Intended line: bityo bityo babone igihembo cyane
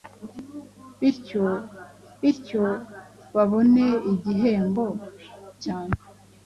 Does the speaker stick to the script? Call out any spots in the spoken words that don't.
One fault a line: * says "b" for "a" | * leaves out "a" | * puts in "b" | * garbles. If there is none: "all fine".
all fine